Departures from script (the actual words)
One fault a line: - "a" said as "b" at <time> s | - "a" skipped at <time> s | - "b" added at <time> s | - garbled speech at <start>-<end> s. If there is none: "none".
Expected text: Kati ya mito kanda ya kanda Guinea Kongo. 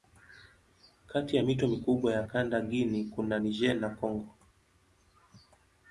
- "kanda" said as "mikubwa" at 1.7 s
- "kuna Niger na" added at 3.1 s